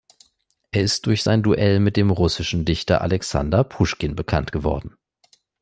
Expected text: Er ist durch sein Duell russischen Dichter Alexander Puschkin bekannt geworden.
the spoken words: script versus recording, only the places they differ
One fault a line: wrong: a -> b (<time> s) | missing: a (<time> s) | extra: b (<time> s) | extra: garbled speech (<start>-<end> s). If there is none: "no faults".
extra: mit dem (1.8 s)